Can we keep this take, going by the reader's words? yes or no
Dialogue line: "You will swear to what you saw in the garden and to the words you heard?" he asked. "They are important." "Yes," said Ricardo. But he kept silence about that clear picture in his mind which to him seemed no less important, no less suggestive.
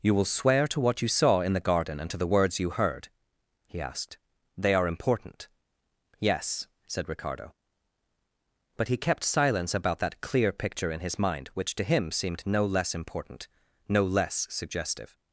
yes